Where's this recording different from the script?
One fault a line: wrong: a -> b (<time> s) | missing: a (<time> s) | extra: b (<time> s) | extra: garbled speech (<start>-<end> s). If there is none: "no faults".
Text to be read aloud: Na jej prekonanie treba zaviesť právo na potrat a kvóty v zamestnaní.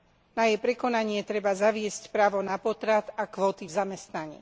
no faults